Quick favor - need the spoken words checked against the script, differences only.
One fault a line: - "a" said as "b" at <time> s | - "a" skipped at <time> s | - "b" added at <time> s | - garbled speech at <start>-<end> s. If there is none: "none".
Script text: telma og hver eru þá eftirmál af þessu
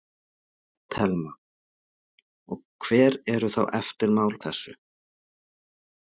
- "af" skipped at 4.3 s